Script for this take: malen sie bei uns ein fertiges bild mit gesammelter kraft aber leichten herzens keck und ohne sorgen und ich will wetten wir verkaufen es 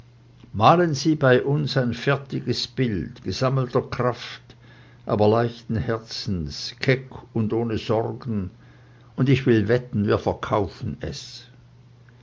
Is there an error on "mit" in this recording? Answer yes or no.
yes